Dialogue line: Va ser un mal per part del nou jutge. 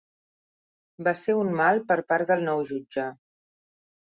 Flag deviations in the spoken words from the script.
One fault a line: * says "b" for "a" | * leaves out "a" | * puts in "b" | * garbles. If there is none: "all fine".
all fine